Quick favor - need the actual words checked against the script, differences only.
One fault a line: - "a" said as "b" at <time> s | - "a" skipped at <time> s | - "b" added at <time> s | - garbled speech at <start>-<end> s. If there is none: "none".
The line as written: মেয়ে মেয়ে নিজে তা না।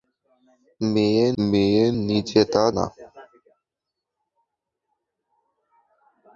none